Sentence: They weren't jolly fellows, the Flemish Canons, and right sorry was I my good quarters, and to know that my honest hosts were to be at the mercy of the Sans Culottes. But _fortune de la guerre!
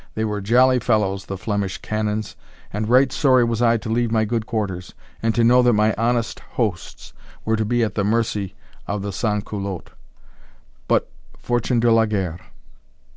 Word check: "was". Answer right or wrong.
right